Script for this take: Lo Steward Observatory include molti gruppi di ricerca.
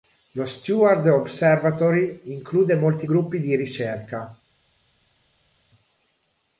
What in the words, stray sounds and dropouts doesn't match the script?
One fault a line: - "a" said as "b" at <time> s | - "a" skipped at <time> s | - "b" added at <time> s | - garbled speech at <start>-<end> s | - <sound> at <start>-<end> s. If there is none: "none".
none